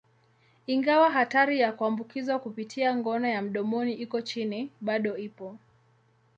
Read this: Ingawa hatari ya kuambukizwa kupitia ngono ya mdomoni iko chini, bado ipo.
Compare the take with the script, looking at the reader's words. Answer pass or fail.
pass